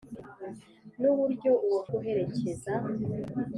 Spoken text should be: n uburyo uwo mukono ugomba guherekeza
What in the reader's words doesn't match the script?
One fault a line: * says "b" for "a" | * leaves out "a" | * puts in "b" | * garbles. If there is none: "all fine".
* leaves out "mukono ugomba"